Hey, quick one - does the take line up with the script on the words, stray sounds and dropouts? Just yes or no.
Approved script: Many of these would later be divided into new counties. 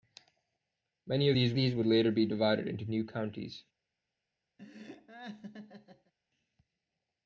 no